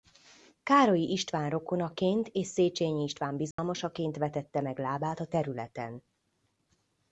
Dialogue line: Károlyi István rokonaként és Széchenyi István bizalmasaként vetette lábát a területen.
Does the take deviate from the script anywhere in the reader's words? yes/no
yes